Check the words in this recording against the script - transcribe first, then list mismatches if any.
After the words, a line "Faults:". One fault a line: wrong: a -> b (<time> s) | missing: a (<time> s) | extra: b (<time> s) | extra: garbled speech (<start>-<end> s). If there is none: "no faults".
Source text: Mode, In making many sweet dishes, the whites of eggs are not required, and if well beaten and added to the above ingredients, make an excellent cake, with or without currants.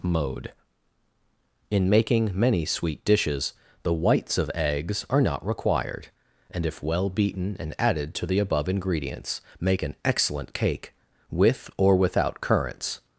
Mode, In making many sweet dishes, the whites of eggs are not required, and if well beaten and added to the above ingredients, make an excellent cake, with or without currants.
Faults:
no faults